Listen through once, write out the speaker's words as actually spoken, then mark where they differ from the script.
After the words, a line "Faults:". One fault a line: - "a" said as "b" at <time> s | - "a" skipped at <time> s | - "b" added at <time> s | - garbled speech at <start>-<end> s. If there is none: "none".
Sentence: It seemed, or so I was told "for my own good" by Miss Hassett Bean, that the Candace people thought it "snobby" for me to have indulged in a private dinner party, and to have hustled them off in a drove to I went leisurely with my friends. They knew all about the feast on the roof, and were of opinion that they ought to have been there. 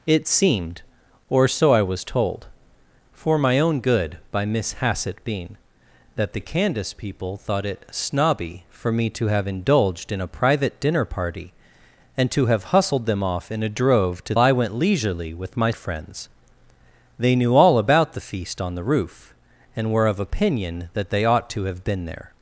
It seemed, or so I was told "for my own good" by Miss Hassett Bean, that the Candace people thought it "snobby" for me to have indulged in a private dinner party, and to have hustled them off in a drove to I went leisurely with my friends. They knew all about the feast on the roof, and were of opinion that they ought to have been there.
Faults:
none